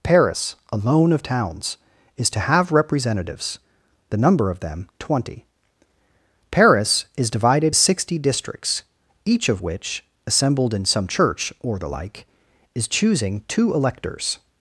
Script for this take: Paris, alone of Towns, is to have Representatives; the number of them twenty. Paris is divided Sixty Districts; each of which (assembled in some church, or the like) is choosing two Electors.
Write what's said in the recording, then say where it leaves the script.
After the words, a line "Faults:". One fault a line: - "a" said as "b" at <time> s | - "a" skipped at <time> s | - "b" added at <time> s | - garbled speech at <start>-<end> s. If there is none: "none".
Paris, alone of Towns, is to have Representatives; the number of them twenty. Paris is divided Sixty Districts; each of which (assembled in some church, or the like) is choosing two Electors.
Faults:
none